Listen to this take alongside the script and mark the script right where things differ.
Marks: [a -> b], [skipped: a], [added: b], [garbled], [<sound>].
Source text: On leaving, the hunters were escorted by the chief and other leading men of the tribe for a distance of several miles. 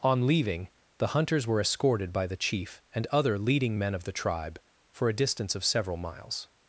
On leaving, the hunters were escorted by the chief and other leading men of the tribe for a distance of several miles.